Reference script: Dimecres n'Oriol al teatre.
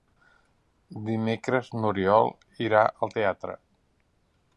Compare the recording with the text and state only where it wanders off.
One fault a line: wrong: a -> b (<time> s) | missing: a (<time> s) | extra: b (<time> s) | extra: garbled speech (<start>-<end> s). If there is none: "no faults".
extra: irà (2.7 s)